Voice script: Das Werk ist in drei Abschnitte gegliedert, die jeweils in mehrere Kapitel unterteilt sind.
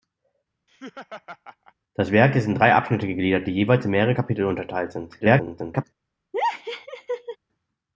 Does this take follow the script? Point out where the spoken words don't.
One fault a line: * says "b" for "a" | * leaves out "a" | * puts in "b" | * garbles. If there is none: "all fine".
* garbles